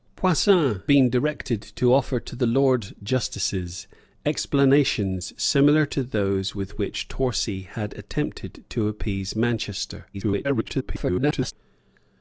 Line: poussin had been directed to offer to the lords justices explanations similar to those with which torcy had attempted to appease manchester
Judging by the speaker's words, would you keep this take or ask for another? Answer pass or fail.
fail